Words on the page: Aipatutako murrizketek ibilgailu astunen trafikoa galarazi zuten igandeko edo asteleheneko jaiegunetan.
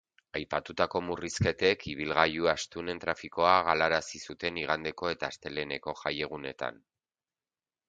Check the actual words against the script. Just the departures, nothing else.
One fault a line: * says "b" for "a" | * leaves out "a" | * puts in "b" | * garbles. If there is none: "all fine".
* says "eta" for "edo"